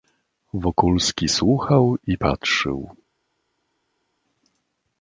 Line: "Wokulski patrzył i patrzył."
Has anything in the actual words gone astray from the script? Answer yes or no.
yes